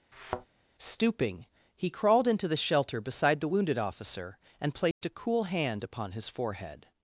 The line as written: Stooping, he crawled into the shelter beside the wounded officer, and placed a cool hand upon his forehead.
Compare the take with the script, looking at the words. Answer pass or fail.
pass